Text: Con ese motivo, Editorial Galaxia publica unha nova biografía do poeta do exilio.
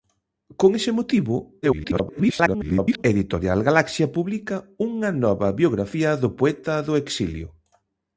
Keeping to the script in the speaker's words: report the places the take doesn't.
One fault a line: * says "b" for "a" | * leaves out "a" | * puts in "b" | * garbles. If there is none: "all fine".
* garbles